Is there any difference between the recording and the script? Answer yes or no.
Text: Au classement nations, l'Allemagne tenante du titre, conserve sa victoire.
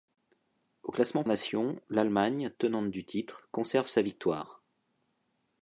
no